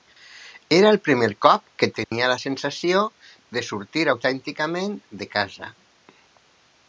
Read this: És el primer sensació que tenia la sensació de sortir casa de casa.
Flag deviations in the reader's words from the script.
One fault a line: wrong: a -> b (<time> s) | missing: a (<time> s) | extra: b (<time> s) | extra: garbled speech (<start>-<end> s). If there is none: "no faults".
wrong: És -> Era (0.8 s)
wrong: sensació -> cop (1.4 s)
wrong: casa -> autènticament (4.1 s)